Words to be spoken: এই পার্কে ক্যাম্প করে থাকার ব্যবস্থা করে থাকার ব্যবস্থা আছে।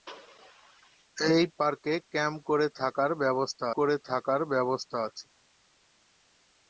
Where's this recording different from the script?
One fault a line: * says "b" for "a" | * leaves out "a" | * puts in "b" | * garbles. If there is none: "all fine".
all fine